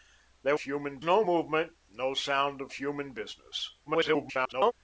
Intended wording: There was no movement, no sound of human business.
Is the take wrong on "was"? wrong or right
wrong